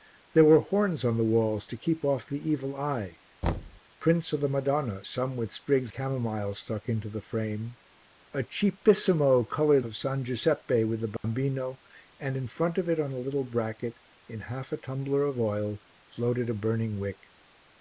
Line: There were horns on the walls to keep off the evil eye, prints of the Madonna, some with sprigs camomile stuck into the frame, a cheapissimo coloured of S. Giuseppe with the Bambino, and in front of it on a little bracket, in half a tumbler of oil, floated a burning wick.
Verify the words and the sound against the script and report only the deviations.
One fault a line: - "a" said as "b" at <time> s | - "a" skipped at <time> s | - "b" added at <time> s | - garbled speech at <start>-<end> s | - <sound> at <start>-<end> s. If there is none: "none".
- thud at 3.4-3.8 s
- dropout at 11.2-11.2 s